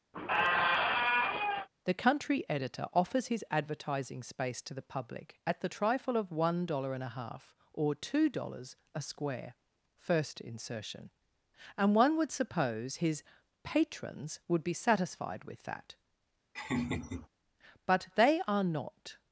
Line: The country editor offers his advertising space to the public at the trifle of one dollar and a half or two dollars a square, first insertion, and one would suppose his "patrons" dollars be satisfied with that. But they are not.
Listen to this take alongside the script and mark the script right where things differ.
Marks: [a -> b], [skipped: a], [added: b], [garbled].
The country editor offers his advertising space to the public at the trifle of one dollar and a half or two dollars a square, first insertion, and one would suppose his "patrons" [dollars -> would] be satisfied with that. But they are not.